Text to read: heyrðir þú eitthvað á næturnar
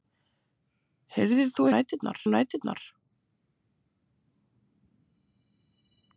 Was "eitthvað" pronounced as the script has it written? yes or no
no